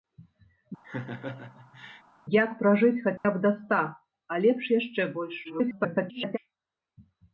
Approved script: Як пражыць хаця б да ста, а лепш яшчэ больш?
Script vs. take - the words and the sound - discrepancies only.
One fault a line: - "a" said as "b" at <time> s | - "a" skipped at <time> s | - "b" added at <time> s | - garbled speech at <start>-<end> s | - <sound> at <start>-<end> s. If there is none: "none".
- laugh at 0.8-2.0 s
- dropout at 3.2-3.2 s
- garbled speech at 5.4-6.4 s